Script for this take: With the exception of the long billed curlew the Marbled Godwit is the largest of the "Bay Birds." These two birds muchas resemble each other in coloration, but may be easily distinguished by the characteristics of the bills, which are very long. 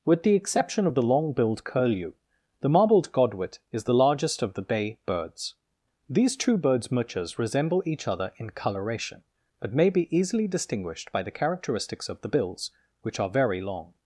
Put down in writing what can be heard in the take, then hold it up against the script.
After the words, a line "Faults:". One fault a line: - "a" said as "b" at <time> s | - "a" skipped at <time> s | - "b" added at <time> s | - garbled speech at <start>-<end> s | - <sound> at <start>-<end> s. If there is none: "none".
With the exception of the long billed curlew the Marbled Godwit is the largest of the "Bay Birds." These two birds muchas resemble each other in coloration, but may be easily distinguished by the characteristics of the bills, which are very long.
Faults:
none